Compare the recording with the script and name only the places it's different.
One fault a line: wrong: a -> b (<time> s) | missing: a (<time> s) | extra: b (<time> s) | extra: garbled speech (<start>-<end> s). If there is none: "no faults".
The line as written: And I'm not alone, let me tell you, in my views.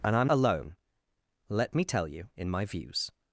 missing: not (0.3 s)